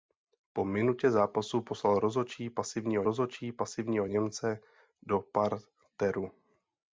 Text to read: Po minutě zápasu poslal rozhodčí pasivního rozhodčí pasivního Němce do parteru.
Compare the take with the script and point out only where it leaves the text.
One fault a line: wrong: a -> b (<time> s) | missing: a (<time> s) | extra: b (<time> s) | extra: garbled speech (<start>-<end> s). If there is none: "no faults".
no faults